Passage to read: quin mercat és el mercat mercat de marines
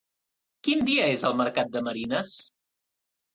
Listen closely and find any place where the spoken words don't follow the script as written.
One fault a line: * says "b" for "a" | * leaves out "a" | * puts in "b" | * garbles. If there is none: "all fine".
* says "dia" for "mercat"
* leaves out "mercat"